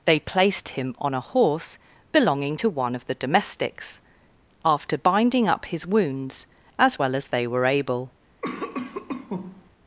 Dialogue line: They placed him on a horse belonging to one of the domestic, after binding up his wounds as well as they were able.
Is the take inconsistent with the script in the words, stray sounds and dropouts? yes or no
yes